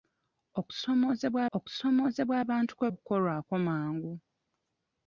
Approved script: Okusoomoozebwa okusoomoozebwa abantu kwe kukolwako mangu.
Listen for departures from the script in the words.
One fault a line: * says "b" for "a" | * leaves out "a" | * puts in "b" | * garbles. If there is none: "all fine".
all fine